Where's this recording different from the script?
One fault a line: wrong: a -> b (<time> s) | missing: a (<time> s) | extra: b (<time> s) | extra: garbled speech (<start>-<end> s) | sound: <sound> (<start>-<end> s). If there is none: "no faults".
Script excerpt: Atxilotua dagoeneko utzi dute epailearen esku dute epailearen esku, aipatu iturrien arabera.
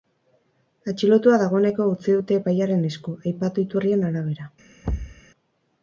missing: dute epailearen esku (3.2 s)
sound: thud (4.8-5.2 s)